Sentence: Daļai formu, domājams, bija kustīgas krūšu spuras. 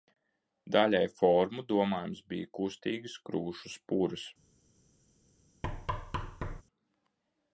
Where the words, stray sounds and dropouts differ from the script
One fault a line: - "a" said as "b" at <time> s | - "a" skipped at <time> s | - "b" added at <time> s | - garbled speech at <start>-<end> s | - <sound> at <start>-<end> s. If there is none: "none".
- thud at 5.6-6.6 s